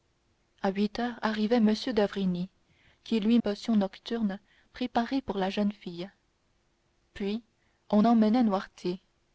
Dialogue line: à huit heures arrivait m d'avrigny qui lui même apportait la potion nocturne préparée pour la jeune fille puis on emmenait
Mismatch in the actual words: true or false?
true